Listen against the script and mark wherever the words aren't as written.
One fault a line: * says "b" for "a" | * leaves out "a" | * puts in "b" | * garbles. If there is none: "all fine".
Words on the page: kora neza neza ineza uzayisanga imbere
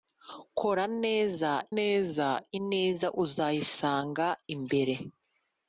all fine